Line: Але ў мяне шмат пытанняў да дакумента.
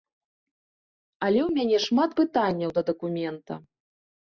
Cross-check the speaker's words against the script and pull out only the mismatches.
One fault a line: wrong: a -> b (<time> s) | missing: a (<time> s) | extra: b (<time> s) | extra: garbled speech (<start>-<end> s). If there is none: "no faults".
no faults